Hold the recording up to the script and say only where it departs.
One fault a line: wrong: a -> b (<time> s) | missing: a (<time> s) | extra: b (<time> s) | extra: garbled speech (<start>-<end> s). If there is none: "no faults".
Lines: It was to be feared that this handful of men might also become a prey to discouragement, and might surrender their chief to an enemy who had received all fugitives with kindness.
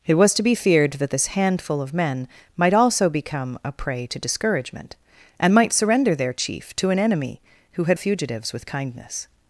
missing: received all (8.0 s)